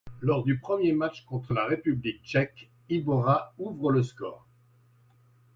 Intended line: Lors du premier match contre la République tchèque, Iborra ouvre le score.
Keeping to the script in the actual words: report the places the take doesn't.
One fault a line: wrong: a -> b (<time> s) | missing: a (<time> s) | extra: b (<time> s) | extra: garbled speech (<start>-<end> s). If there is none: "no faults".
no faults